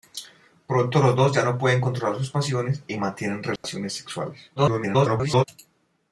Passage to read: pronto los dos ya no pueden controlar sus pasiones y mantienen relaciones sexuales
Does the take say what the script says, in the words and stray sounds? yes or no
no